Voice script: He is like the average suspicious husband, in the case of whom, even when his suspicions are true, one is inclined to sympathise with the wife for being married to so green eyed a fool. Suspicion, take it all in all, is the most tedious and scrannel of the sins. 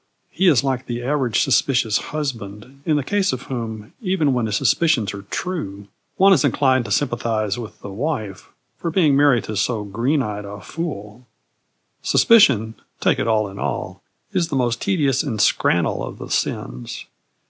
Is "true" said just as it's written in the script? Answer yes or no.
yes